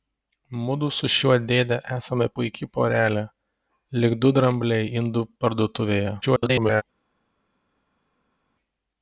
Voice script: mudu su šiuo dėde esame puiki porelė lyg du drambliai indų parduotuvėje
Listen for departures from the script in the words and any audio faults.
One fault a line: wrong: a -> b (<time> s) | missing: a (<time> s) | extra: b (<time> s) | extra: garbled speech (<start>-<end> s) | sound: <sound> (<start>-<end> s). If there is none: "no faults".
extra: garbled speech (6.2-6.8 s)